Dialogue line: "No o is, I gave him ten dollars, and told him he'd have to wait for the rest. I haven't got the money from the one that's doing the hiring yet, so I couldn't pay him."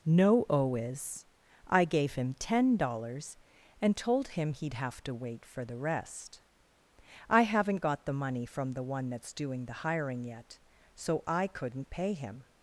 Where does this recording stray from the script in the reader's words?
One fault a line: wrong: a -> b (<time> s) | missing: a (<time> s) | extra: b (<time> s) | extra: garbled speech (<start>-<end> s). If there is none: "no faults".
no faults